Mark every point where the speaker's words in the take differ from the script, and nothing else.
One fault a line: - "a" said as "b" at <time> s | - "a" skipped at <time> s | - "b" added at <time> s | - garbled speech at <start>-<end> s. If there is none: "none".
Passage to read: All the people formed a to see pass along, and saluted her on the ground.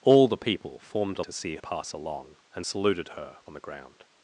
none